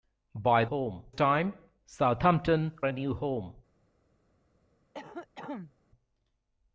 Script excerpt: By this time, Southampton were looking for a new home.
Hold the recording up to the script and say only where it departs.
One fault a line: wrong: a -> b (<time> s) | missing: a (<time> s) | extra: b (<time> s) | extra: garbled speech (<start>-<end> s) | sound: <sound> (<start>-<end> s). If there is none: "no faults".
wrong: this -> home (0.6 s)
missing: were looking for (2.8 s)
sound: cough (4.9-5.7 s)